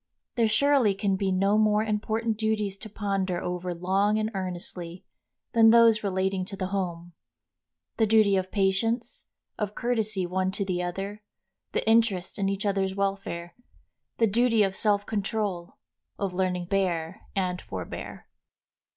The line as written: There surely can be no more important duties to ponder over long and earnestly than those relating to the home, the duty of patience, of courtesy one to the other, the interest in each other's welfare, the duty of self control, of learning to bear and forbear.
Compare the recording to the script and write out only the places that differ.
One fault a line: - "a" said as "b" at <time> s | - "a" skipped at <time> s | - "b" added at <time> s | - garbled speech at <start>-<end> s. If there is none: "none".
- "to" skipped at 16.7 s